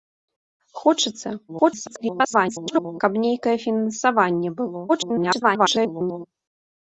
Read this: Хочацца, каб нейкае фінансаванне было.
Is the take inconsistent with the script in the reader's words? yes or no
yes